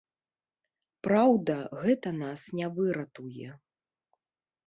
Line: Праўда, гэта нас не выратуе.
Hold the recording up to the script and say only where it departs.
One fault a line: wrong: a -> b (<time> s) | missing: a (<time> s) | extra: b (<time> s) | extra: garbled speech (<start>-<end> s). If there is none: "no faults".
no faults